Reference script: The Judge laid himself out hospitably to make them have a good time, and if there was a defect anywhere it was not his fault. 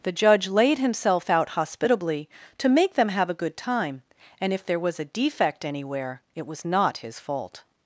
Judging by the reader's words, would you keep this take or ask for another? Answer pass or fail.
pass